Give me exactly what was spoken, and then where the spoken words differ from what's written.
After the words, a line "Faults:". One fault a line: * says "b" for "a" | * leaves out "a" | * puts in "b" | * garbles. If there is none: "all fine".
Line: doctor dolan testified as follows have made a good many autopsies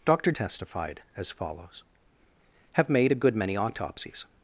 doctor testified as follows have made a good many autopsies
Faults:
* leaves out "dolan"